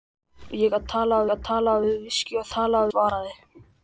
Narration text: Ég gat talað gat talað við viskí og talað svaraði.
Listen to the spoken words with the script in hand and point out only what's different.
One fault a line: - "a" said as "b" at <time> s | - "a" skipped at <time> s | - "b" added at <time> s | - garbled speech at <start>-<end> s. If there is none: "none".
none